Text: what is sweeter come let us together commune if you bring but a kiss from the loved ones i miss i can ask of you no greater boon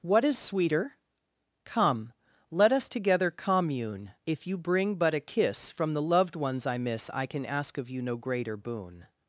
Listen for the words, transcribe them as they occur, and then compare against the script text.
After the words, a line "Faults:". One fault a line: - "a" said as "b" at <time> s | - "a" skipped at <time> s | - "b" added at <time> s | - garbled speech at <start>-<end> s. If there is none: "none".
what is sweeter come let us together commune if you bring but a kiss from the loved ones i miss i can ask of you no greater boon
Faults:
none